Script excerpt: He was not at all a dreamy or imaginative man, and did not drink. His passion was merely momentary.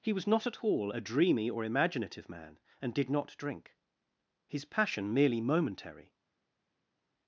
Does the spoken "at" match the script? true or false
true